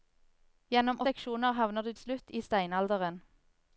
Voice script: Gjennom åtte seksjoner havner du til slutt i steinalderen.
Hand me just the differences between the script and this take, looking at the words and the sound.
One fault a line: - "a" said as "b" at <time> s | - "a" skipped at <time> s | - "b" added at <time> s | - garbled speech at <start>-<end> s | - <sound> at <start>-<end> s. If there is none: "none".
- "åtte" skipped at 1.0 s
- "til" skipped at 1.9 s